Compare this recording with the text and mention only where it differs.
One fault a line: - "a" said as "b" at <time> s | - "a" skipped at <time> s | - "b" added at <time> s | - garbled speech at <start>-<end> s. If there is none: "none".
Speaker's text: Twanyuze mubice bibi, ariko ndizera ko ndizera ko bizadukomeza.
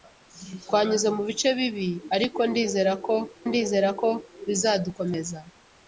none